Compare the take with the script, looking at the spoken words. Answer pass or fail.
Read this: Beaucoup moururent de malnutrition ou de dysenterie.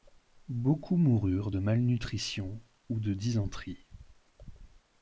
pass